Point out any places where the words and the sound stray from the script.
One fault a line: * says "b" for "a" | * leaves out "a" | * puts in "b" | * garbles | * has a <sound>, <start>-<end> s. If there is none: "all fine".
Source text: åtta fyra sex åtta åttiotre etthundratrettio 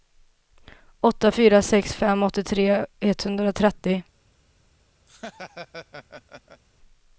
* says "fem" for "åtta"
* has a laugh, 5.1-6.6 s